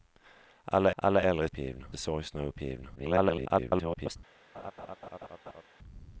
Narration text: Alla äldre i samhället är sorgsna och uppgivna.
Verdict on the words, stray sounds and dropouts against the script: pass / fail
fail